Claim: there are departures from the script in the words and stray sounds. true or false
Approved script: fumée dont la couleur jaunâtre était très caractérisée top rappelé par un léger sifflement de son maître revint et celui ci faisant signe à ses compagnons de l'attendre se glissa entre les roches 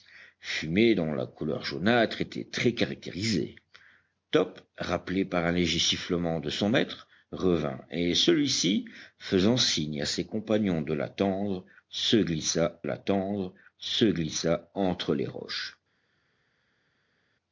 true